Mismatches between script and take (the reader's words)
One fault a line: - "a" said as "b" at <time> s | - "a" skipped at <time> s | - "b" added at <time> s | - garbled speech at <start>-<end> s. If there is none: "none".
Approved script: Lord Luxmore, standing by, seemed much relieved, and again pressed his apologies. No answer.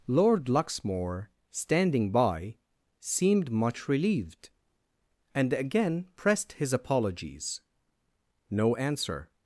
none